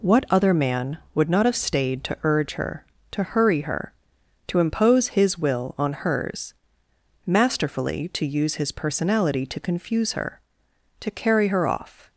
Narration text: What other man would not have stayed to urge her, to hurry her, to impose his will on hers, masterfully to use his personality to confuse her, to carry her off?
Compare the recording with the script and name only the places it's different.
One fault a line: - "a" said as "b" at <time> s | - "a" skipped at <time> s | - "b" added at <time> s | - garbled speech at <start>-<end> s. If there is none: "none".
none